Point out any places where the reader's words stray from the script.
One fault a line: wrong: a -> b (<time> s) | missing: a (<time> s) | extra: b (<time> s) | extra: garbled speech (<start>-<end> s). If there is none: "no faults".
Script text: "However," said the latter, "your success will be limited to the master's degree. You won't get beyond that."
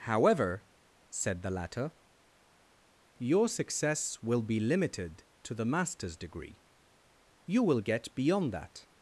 wrong: won't -> will (7.6 s)